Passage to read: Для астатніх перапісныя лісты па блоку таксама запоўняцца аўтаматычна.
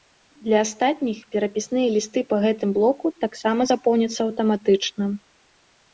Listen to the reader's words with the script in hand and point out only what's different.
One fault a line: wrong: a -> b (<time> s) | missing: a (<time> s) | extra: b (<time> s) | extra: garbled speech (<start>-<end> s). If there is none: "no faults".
extra: гэтым (2.5 s)